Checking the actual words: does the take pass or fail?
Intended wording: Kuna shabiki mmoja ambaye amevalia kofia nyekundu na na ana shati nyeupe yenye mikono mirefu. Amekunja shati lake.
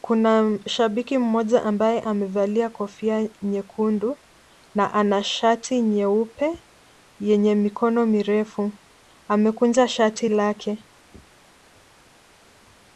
fail